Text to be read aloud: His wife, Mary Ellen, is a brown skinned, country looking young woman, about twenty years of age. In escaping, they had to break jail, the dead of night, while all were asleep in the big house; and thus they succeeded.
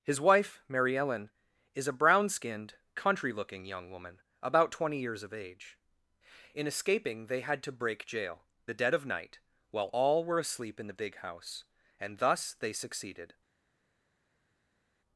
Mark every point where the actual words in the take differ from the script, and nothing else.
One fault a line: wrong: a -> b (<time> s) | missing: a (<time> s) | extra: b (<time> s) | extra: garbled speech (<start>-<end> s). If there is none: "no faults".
no faults